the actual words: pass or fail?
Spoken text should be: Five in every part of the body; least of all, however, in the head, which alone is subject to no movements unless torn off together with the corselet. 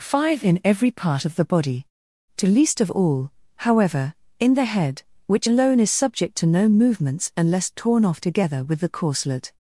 fail